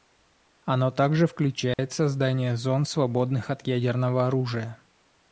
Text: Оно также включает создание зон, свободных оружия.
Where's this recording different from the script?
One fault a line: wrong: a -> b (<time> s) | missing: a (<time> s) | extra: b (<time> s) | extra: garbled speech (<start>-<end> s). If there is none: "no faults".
extra: от ядерного (3.5 s)